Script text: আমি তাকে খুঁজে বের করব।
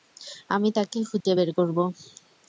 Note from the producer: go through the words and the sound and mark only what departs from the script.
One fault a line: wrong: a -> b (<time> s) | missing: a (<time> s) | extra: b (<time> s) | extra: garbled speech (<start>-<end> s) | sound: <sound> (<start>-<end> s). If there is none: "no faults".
sound: dropout (1.2-1.3 s)